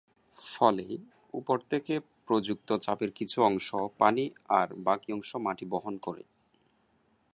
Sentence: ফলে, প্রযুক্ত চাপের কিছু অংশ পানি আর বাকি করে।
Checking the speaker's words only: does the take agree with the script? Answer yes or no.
no